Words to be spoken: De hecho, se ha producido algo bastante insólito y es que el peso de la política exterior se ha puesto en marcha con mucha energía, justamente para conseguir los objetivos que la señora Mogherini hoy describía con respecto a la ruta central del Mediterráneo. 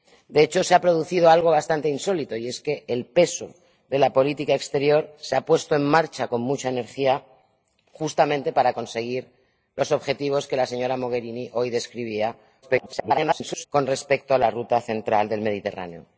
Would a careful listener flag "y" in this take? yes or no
no